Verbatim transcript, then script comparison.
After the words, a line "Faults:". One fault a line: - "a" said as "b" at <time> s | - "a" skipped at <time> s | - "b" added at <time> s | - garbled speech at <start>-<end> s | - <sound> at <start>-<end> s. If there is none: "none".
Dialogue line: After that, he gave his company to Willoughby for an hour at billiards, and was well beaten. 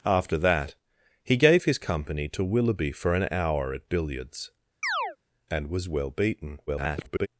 After that, he gave his company to Willoughby for an hour at billiards, and was well beaten. [garbled]
Faults:
- chirp at 4.8-5.2 s
- garbled speech at 6.7-7.3 s